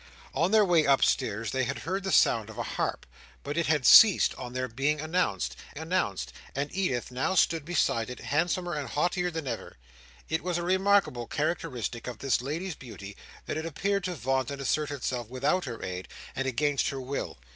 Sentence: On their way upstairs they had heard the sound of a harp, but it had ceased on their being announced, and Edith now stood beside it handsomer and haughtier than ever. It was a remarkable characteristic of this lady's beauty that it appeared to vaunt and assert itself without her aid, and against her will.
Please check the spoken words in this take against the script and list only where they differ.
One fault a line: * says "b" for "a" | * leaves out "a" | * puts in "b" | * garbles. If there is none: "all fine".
* puts in "announced"